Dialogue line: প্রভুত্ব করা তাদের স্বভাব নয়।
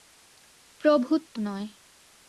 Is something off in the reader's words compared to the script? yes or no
yes